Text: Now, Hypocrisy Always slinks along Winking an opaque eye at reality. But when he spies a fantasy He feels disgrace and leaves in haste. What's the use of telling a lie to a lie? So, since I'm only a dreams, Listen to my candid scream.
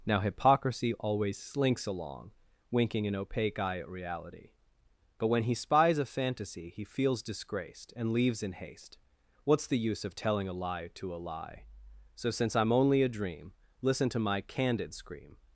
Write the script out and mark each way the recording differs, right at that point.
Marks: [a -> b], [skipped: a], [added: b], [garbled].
Now, Hypocrisy Always slinks along Winking an opaque eye at reality. But when he spies a fantasy He feels [disgrace -> disgraced] and leaves in haste. What's the use of telling a lie to a lie? So, since I'm only a [dreams, -> dream] Listen to my candid scream.